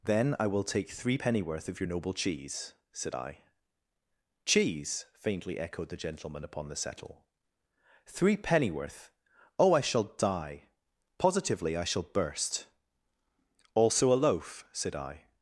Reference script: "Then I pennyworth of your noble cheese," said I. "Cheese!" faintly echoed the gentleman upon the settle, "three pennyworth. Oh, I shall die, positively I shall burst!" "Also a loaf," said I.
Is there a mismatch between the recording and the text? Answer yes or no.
yes